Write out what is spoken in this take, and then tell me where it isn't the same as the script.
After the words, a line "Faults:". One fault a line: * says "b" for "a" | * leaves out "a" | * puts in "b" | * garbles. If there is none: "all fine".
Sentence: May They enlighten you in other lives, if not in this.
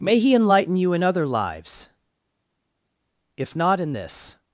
May He enlighten you in other lives, if not in this.
Faults:
* says "He" for "They"